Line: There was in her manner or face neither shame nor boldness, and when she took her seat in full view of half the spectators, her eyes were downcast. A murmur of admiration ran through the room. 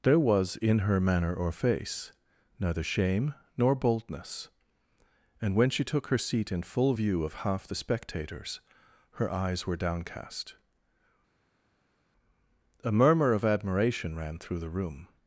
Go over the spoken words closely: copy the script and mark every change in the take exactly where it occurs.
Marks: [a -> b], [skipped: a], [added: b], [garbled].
There was in her manner or face neither shame nor boldness, and when she took her seat in full view of half the spectators, her eyes were downcast. A murmur of admiration ran through the room.